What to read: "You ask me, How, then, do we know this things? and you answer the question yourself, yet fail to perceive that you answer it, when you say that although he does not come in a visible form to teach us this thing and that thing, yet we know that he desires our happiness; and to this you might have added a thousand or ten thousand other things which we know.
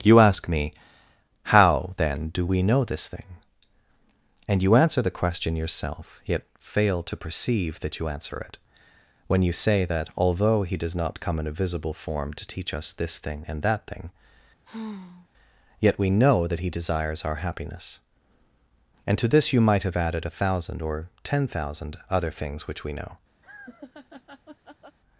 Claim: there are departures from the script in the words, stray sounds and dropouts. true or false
true